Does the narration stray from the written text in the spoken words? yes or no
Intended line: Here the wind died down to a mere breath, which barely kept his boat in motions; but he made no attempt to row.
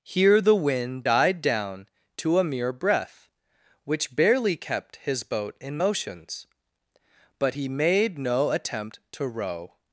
no